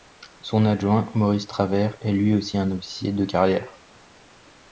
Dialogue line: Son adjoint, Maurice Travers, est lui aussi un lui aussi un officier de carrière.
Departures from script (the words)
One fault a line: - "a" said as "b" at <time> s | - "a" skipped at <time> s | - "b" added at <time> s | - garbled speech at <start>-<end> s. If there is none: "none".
- "lui aussi un" skipped at 2.7 s